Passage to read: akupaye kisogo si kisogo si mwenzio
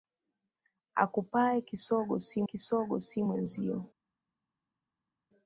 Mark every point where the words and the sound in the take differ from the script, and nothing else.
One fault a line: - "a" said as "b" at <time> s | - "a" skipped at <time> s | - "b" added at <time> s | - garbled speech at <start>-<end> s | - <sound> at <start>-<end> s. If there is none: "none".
none